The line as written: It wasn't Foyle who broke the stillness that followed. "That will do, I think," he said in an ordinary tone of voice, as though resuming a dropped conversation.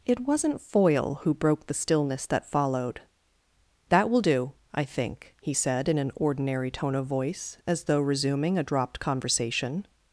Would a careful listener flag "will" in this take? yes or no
no